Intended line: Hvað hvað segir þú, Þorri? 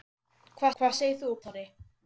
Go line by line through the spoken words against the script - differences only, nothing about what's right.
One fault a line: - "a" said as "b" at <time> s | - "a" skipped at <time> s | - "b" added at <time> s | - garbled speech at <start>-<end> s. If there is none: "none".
none